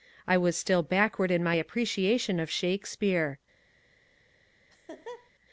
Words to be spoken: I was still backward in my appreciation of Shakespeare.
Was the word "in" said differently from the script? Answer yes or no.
no